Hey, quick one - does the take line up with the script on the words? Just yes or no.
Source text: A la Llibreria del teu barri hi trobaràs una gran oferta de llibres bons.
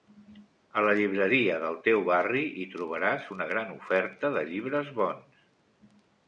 yes